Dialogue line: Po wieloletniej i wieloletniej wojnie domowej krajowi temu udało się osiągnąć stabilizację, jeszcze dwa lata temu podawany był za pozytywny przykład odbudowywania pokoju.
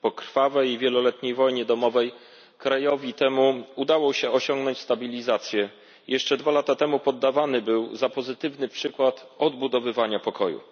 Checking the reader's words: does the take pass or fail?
fail